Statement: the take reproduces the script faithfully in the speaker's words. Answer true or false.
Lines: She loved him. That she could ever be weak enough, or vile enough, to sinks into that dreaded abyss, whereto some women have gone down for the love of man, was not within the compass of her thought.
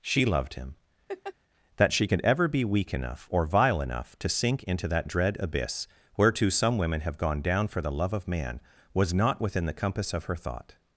false